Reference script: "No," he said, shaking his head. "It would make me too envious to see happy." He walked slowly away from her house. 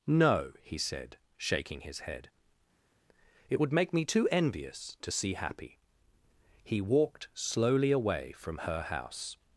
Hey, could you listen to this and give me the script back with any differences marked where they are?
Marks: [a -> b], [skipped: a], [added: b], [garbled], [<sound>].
"No," he said, shaking his head. "It would make me too envious to see happy." He walked slowly away from her house.